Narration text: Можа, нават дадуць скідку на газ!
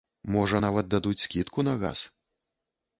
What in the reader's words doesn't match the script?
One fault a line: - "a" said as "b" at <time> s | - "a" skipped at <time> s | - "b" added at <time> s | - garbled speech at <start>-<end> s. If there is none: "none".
none